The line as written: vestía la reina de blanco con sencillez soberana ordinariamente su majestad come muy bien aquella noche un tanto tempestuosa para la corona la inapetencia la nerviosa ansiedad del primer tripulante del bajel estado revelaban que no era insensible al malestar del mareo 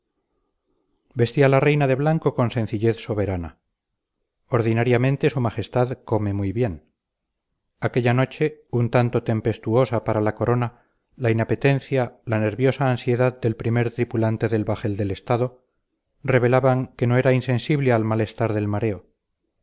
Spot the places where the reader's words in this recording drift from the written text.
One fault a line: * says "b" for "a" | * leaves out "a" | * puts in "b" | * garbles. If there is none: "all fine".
* puts in "del"